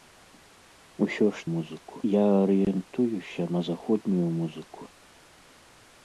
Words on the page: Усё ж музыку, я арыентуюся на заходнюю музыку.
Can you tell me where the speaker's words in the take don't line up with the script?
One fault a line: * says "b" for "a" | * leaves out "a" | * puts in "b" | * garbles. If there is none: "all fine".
all fine